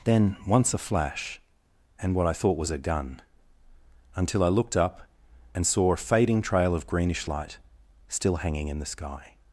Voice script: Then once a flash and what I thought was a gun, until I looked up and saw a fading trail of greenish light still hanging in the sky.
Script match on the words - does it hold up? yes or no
yes